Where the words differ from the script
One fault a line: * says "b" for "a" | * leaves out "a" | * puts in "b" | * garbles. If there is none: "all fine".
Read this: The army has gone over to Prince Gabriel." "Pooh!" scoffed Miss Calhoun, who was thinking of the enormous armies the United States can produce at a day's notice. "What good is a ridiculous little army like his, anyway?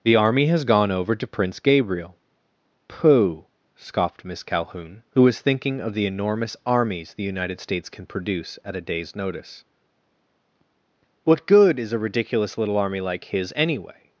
all fine